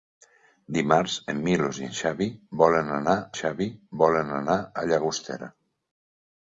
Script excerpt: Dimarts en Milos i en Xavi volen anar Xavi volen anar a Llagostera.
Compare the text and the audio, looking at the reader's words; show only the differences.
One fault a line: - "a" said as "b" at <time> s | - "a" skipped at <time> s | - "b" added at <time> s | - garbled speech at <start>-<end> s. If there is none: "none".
none